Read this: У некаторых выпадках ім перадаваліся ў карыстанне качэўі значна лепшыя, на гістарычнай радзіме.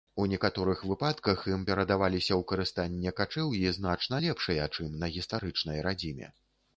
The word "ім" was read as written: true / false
true